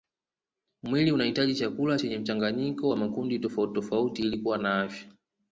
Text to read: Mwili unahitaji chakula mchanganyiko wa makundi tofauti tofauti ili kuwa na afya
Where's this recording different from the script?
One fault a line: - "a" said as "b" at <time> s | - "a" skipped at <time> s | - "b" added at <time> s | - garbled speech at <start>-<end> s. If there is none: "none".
- "chenye" added at 2.0 s